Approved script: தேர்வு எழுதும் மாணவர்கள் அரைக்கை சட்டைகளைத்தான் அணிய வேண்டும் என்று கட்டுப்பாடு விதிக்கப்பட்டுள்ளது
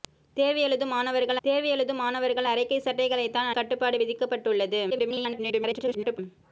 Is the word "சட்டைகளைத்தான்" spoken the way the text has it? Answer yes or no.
no